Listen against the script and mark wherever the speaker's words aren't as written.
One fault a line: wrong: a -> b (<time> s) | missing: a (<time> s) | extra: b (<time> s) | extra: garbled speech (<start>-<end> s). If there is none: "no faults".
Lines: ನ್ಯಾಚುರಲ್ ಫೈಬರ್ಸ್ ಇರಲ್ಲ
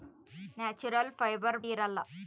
no faults